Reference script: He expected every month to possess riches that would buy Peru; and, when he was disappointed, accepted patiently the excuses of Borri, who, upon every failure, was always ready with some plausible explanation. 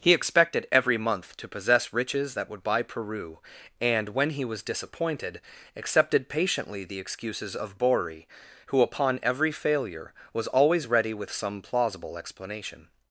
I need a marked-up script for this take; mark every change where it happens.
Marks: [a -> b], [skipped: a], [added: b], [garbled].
He expected every month to possess riches that would buy Peru; and, when he was disappointed, accepted patiently the excuses of Borri, who, upon every failure, was always ready with some plausible explanation.